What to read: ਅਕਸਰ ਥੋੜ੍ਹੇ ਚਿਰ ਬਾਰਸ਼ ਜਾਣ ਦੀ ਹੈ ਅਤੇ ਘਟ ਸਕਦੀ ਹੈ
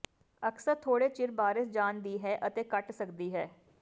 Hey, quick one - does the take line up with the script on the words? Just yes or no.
yes